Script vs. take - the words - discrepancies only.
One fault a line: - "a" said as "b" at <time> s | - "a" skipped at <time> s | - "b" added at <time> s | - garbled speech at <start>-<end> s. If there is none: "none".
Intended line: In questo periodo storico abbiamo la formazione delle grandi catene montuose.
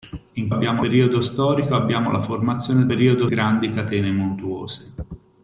- "questo" said as "abbiamo" at 0.5 s
- "delle" said as "periodo" at 2.9 s